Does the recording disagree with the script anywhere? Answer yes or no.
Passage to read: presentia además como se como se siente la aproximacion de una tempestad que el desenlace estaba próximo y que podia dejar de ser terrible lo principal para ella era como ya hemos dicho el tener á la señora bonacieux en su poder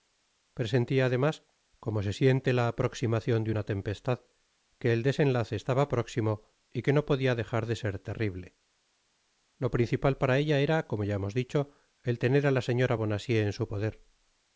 yes